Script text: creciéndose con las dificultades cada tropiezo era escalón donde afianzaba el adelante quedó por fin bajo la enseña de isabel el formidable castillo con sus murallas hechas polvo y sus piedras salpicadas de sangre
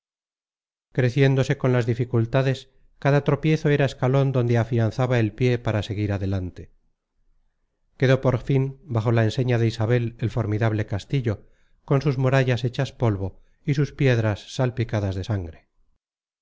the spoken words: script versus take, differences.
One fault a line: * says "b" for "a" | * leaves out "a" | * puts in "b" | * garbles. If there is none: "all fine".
* puts in "pie para seguir"